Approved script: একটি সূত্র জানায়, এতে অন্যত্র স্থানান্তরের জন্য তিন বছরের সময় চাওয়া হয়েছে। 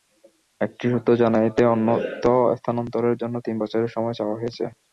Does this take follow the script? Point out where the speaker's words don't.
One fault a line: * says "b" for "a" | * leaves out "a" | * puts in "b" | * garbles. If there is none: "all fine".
all fine